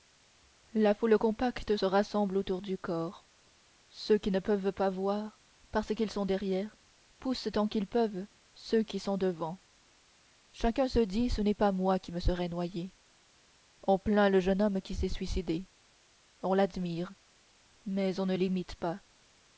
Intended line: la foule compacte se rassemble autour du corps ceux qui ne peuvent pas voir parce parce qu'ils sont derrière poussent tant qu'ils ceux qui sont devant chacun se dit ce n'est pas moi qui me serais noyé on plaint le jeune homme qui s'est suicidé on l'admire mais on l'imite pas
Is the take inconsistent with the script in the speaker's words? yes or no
yes